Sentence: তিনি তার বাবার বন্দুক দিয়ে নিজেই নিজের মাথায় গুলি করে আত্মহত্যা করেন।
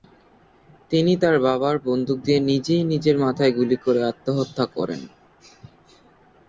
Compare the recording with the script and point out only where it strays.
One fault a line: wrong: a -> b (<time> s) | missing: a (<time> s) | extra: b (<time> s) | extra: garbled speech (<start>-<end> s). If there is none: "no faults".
no faults